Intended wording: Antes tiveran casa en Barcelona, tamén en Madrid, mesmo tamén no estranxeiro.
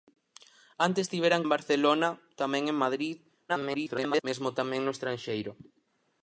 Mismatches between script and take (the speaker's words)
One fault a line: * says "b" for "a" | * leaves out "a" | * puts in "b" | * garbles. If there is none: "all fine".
* leaves out "casa"
* garbles